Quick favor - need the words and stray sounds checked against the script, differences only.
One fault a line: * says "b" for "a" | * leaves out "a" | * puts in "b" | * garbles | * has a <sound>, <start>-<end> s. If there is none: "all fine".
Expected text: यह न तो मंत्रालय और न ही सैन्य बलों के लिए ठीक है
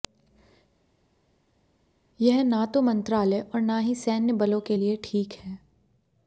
all fine